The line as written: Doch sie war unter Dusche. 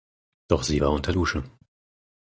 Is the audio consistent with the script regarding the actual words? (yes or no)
yes